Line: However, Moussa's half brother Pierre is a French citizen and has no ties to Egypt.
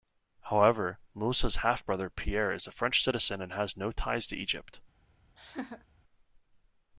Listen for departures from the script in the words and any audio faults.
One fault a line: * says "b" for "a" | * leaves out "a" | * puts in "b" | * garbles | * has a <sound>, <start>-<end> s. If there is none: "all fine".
* has a laugh, 5.4-5.9 s